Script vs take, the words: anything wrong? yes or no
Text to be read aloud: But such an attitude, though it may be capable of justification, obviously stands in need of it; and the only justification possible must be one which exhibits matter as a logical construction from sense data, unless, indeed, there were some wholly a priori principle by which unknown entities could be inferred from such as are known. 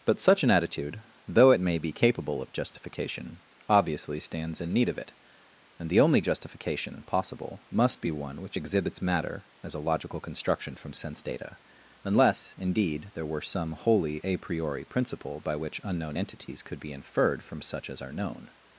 no